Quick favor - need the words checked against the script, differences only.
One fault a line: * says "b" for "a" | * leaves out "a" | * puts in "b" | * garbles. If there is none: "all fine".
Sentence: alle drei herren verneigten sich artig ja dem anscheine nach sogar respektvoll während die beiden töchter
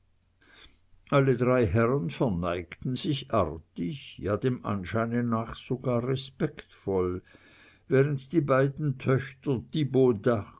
all fine